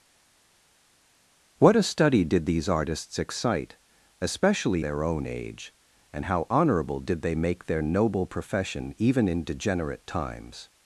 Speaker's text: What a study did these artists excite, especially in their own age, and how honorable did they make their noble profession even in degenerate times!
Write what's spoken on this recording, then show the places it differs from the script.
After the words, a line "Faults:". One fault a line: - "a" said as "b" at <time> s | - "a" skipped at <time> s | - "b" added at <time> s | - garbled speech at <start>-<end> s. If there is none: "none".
What a study did these artists excite, especially their own age, and how honorable did they make their noble profession even in degenerate times!
Faults:
- "in" skipped at 4.8 s